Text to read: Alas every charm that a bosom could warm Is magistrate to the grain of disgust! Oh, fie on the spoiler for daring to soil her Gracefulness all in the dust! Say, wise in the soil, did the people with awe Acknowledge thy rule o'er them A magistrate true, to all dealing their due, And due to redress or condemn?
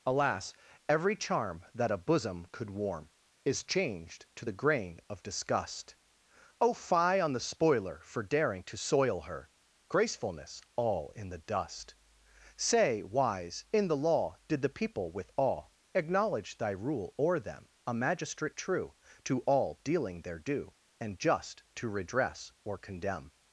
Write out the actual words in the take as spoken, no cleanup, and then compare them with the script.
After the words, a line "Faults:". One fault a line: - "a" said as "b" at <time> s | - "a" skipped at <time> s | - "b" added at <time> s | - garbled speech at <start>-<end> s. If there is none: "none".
Alas every charm that a bosom could warm Is changed to the grain of disgust! Oh, fie on the spoiler for daring to soil her Gracefulness all in the dust! Say, wise in the law, did the people with awe Acknowledge thy rule o'er them A magistrate true, to all dealing their due, And just to redress or condemn?
Faults:
- "magistrate" said as "changed" at 3.6 s
- "soil" said as "law" at 14.0 s
- "due" said as "just" at 21.2 s